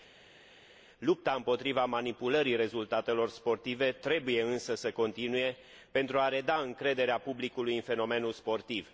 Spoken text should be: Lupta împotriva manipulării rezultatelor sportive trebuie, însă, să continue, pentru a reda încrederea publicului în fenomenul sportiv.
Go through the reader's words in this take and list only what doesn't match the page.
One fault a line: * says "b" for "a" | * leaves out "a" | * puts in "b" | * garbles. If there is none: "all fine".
all fine